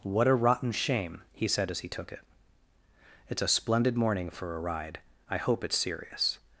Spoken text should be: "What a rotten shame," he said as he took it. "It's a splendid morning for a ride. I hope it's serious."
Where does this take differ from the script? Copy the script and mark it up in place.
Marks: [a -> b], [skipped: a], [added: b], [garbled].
"What a rotten shame," he said as he took it. "It's a splendid morning for a ride. I hope it's serious."